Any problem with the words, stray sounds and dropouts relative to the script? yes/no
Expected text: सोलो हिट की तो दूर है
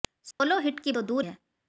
yes